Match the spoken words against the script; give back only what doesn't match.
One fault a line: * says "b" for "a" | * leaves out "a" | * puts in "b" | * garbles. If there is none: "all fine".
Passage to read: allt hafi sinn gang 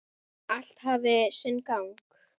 all fine